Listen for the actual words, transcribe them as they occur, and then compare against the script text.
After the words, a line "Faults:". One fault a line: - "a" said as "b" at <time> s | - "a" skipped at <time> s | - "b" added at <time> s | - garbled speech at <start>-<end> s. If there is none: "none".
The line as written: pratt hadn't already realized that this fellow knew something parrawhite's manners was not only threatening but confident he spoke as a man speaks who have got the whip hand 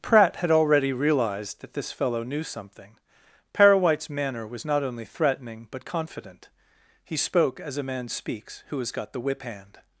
pratt had already realized that this fellow knew something parrawhite's manner was not only threatening but confident he spoke as a man speaks who has got the whip hand
Faults:
- "hadn't" said as "had" at 0.4 s
- "manners" said as "manner" at 4.1 s
- "have" said as "has" at 8.8 s